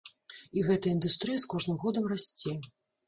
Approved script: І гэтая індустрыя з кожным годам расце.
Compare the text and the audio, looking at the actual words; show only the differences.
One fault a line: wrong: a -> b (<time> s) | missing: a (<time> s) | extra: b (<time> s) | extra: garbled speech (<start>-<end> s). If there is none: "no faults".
no faults